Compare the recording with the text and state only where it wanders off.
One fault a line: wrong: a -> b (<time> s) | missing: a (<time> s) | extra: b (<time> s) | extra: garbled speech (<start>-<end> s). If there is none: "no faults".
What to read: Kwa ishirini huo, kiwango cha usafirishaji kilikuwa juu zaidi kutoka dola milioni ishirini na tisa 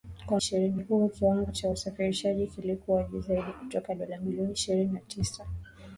no faults